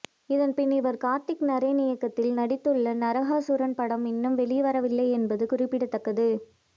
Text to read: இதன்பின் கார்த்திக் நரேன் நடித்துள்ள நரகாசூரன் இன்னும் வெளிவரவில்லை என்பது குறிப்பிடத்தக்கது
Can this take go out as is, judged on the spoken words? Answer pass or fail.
fail